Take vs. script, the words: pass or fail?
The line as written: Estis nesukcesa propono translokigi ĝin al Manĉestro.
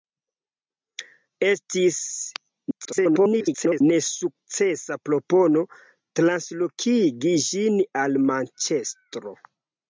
fail